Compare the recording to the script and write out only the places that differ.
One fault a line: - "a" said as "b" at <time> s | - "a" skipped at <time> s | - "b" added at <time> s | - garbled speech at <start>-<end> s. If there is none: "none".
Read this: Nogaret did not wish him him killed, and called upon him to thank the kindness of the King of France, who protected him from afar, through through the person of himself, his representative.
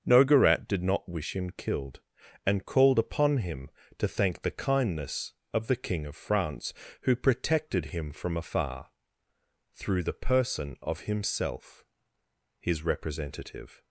- "him" skipped at 1.5 s
- "through" skipped at 10.0 s